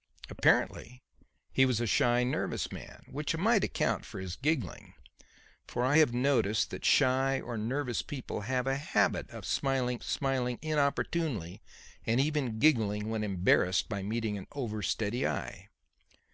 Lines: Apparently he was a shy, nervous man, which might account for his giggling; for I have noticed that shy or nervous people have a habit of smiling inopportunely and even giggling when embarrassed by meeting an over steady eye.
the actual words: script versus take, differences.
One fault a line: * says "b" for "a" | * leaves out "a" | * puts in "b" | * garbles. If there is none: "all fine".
* puts in "smiling"